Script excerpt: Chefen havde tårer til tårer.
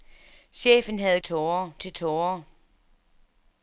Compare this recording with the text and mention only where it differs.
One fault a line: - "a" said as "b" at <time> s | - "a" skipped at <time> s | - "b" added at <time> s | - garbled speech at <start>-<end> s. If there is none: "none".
none